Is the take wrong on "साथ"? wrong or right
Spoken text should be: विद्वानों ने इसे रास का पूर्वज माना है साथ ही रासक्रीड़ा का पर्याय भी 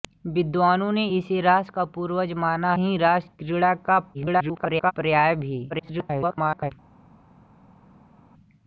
wrong